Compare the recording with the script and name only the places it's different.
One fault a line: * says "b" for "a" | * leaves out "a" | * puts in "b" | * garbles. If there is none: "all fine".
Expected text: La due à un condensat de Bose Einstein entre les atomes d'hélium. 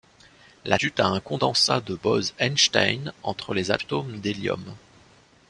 all fine